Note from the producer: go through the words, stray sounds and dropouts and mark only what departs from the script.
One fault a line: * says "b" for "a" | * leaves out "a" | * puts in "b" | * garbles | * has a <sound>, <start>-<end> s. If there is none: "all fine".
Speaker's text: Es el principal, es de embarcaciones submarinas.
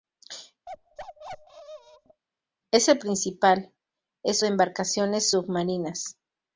* has a bark, 0.7-2.2 s